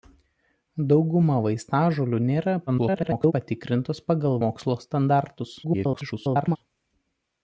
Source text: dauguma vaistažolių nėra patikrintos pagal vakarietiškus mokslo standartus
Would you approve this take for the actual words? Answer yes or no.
no